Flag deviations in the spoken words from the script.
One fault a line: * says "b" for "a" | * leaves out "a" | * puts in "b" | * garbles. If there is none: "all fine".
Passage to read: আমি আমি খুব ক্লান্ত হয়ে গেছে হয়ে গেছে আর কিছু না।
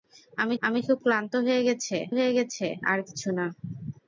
all fine